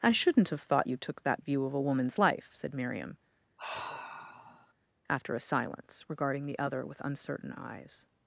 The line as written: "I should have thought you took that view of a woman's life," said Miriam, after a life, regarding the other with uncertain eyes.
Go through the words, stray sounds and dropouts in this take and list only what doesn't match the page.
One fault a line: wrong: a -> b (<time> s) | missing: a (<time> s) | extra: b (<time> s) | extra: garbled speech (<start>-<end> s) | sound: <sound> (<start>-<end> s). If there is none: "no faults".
wrong: should -> shouldn't (0.1 s)
sound: sigh (3.6-4.7 s)
wrong: life -> silence (5.4 s)